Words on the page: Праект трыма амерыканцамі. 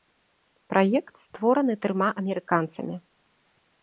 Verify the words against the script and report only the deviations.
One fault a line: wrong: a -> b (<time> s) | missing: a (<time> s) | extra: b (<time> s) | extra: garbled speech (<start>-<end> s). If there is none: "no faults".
extra: створаны (1.2 s)